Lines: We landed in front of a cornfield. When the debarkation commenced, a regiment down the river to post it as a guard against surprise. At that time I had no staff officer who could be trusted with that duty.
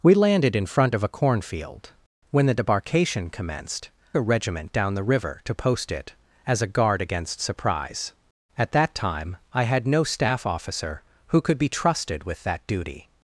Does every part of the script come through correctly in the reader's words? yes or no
yes